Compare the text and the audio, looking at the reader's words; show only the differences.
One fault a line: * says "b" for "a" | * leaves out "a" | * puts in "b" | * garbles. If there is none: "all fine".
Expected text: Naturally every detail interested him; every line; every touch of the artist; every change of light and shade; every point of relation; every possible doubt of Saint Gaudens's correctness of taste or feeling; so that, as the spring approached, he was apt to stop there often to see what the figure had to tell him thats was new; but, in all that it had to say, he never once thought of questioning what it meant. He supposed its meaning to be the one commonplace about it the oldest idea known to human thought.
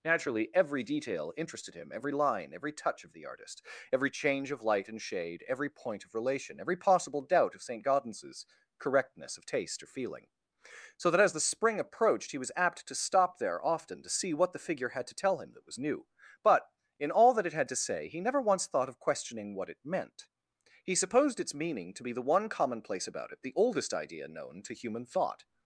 * says "that" for "thats"